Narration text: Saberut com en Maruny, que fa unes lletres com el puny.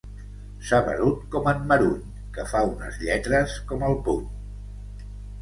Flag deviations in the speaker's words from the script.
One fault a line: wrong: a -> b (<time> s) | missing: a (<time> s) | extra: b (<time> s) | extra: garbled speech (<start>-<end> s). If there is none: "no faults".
no faults